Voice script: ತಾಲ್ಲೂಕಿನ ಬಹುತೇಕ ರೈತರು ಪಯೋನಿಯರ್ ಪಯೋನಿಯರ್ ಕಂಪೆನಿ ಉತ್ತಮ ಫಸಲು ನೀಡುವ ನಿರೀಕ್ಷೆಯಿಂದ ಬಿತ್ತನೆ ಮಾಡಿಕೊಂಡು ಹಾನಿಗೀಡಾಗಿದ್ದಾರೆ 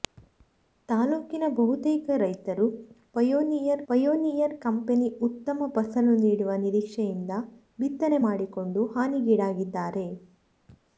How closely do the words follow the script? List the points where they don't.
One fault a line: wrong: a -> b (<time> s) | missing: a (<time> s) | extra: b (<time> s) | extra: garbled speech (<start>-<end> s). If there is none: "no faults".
no faults